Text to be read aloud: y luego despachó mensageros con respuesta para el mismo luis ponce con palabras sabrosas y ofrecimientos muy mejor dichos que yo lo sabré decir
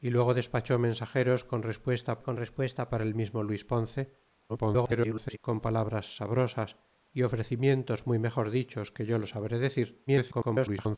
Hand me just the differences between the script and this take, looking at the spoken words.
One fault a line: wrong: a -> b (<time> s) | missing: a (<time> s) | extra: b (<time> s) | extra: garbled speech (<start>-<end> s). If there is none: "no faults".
extra: con respuesta (2.2 s)
extra: garbled speech (4.5-5.4 s)
extra: garbled speech (10.1-11.0 s)